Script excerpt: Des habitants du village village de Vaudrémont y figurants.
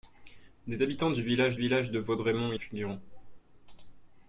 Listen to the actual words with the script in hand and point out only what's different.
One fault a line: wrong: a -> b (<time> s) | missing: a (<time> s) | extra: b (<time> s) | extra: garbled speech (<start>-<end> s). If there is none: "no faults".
no faults